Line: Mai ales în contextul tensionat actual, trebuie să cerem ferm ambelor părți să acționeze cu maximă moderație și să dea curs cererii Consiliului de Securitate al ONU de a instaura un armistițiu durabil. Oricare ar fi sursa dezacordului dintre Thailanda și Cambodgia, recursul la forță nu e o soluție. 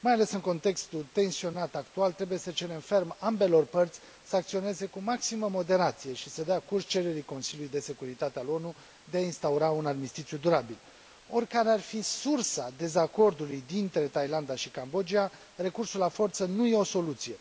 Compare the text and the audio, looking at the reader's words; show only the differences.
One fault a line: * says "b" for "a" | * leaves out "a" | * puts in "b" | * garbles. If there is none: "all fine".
all fine